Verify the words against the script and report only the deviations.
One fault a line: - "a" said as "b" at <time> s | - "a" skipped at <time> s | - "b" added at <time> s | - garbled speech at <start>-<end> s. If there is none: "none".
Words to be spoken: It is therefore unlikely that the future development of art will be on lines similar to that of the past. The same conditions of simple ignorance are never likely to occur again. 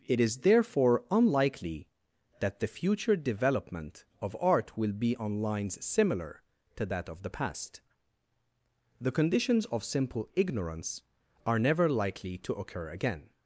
- "same" skipped at 9.1 s